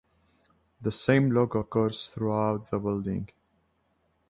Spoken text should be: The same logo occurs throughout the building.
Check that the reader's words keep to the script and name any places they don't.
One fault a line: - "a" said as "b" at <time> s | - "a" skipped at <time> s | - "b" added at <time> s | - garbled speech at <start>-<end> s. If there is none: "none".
none